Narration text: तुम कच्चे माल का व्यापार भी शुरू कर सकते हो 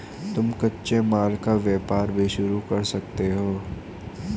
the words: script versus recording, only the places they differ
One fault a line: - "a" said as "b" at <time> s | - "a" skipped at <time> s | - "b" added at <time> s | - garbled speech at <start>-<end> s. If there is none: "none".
none